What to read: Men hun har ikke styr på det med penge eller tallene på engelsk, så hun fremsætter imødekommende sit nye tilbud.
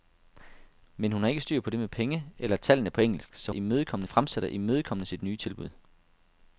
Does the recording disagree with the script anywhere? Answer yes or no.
yes